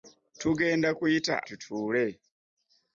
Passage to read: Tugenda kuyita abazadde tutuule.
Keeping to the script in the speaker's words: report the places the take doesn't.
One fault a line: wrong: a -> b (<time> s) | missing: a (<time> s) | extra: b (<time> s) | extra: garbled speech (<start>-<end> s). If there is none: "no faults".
missing: abazadde (1.4 s)